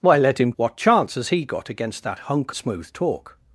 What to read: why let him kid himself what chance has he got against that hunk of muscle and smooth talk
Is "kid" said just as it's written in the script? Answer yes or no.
no